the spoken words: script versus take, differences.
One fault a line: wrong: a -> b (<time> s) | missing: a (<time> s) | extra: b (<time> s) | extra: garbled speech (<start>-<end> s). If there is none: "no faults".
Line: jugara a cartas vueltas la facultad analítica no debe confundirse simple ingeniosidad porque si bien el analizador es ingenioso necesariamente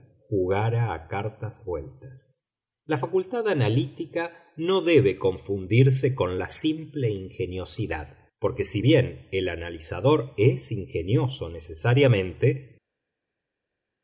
extra: con la (6.1 s)